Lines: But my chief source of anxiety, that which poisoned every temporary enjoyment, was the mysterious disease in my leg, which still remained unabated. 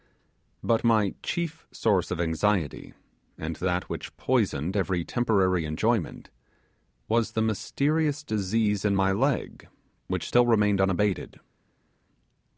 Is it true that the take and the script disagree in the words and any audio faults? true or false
true